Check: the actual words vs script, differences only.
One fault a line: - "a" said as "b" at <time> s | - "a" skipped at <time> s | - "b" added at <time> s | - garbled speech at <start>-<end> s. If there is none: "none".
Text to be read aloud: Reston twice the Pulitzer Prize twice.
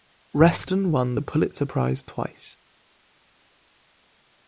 - "twice" said as "won" at 0.9 s